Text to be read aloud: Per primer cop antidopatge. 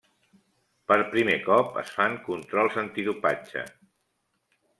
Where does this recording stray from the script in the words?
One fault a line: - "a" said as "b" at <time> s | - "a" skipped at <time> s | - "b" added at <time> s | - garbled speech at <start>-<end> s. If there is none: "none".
- "es fan controls" added at 1.8 s